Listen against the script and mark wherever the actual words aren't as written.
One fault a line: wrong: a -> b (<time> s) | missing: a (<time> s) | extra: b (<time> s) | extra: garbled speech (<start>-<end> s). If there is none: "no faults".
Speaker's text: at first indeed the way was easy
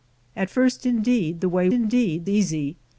wrong: was -> indeed (1.7 s)